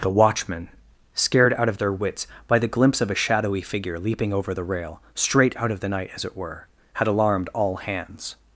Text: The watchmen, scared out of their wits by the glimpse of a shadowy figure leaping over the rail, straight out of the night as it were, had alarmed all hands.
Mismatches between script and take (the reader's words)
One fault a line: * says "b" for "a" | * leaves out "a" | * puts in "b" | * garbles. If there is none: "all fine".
all fine